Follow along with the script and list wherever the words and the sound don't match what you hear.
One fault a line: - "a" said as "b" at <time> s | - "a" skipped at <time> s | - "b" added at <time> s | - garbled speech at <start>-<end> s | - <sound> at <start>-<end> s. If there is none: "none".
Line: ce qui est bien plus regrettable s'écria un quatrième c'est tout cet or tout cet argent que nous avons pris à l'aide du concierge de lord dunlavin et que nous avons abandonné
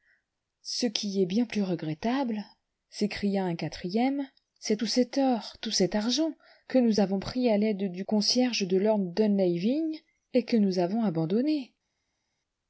none